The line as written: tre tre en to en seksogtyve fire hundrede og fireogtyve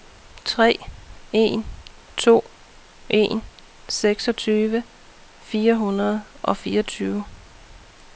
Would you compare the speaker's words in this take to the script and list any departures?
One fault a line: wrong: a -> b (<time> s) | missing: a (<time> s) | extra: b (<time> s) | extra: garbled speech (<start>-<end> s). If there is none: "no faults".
missing: tre (0.8 s)